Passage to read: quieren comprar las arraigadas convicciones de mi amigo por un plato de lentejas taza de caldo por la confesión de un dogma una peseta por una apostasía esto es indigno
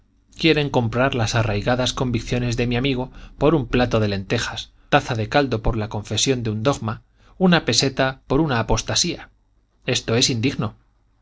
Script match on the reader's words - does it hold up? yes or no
yes